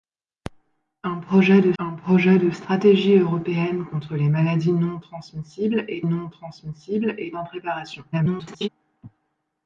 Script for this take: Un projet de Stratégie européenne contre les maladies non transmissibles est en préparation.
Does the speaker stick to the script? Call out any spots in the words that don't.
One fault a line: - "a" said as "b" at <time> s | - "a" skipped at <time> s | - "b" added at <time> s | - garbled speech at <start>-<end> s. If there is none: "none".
- "un projet de" added at 1.8 s
- "non transmissibles est" added at 6.0 s
- garbled speech at 8.1-8.7 s